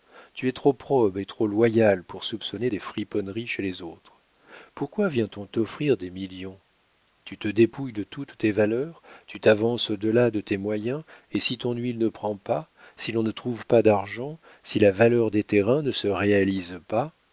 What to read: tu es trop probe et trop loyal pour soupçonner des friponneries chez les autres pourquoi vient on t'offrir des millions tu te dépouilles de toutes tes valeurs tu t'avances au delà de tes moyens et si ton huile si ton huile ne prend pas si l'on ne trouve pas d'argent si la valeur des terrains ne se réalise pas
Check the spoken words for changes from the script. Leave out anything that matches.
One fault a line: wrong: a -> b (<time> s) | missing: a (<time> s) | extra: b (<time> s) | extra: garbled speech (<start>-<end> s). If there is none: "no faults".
missing: si ton huile (12.0 s)